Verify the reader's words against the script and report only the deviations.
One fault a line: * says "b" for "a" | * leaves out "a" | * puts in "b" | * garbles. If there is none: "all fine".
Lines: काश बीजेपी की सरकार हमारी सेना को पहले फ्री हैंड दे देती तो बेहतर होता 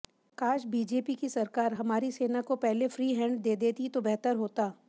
all fine